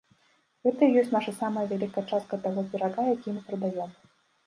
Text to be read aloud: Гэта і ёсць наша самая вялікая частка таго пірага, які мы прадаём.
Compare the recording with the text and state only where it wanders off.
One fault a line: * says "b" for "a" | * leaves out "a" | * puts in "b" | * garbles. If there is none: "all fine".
all fine